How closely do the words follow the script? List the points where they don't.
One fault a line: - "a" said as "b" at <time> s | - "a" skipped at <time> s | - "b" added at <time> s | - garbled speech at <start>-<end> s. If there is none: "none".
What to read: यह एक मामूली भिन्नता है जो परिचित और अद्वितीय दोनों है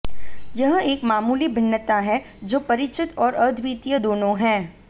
none